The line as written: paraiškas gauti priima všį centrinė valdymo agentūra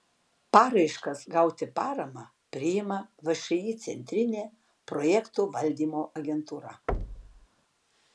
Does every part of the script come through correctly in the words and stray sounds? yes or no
no